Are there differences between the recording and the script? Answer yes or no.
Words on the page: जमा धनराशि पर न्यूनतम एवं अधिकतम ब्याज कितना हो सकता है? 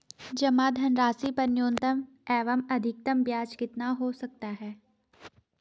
no